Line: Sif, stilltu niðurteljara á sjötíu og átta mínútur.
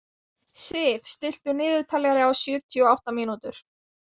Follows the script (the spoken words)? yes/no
yes